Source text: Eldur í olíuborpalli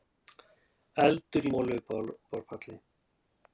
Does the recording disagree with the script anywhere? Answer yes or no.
no